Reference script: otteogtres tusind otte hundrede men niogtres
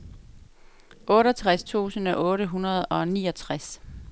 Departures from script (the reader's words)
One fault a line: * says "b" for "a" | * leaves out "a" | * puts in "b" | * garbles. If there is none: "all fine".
* says "og" for "men"